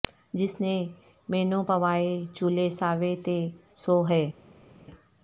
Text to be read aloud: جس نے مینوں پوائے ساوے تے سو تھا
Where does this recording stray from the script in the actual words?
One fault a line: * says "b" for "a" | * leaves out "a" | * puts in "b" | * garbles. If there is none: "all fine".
* puts in "چولے"
* says "ہے" for "تھا"